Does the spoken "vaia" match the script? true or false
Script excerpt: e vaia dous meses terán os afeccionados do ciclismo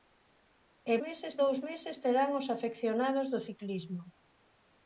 false